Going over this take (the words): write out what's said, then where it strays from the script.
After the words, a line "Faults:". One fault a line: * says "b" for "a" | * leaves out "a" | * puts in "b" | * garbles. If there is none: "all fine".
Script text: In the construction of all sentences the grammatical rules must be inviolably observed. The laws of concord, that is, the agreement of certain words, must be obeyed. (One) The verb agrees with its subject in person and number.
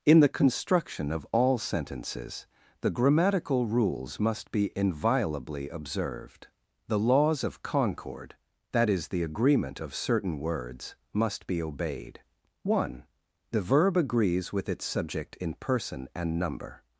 In the construction of all sentences the grammatical rules must be inviolably observed. The laws of concord, that is, the agreement of certain words, must be obeyed. (One) The verb agrees with its subject in person and number.
Faults:
all fine